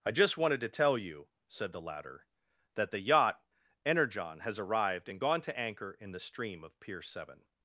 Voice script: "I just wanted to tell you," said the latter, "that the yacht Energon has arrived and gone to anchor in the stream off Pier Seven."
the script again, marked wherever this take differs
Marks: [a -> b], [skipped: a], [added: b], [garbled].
"I just wanted to tell you," said the latter, "that the yacht Energon has arrived and gone to anchor in the stream [off -> of] Pier Seven."